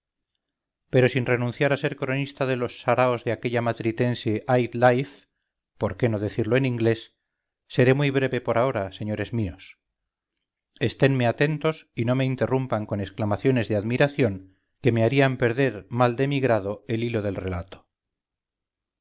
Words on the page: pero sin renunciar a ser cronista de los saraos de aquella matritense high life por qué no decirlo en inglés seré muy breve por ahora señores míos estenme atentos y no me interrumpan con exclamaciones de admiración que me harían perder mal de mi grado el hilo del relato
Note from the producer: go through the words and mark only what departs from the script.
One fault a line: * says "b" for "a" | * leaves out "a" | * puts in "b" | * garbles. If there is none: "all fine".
all fine